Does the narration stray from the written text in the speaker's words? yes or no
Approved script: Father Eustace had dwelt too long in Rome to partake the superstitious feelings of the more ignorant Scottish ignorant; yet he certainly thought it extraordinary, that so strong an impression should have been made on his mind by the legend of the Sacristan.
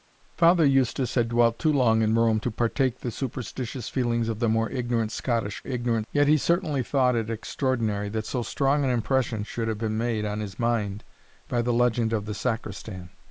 no